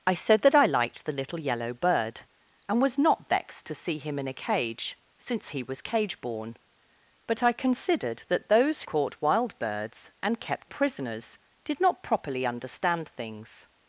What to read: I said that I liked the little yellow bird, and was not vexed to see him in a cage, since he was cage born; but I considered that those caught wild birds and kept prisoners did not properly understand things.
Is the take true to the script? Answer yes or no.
yes